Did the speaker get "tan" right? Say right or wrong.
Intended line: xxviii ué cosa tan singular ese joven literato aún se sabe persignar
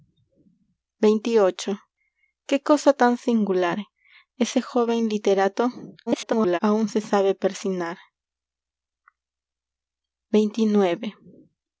right